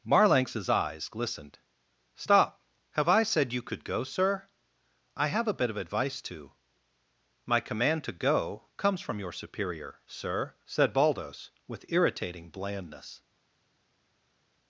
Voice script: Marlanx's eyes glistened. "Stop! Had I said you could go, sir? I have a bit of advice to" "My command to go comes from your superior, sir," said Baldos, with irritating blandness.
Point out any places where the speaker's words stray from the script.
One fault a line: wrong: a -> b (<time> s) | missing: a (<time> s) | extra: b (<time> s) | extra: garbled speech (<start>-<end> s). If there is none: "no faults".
wrong: Had -> Have (2.9 s)